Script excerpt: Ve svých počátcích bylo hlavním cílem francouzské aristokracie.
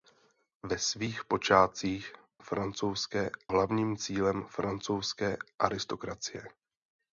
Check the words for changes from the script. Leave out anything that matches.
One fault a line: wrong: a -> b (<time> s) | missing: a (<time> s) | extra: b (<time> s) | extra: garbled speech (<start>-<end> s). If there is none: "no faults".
wrong: bylo -> francouzské (2.4 s)